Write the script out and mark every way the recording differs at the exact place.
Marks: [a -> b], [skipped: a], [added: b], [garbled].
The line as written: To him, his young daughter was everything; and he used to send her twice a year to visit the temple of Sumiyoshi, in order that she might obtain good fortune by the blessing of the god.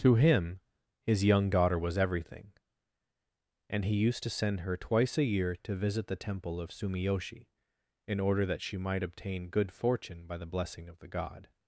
To him, his young daughter was everything; and he used to send her twice a year to visit the temple of Sumiyoshi, in order that she might obtain good fortune by the blessing of the god.